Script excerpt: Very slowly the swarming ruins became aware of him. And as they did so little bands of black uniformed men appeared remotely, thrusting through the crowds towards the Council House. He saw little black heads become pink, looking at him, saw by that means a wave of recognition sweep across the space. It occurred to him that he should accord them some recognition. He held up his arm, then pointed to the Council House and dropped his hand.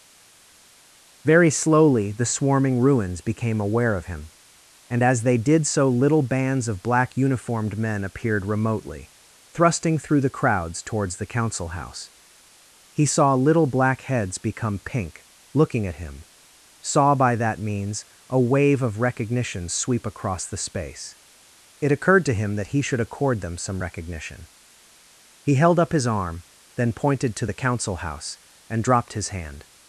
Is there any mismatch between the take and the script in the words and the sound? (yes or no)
no